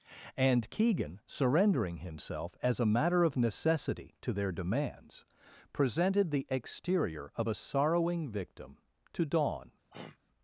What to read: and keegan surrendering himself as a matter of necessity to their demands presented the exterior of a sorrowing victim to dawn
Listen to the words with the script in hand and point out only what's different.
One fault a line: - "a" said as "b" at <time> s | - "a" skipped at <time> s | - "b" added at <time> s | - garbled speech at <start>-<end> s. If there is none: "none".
none